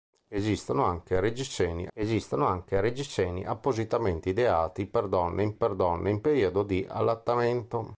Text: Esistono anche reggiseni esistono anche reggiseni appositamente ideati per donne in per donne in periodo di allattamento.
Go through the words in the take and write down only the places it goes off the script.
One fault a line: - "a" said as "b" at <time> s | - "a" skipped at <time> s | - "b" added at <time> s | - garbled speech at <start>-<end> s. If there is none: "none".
none